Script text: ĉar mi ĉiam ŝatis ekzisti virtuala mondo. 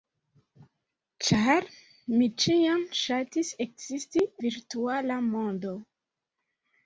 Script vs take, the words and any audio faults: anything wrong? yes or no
no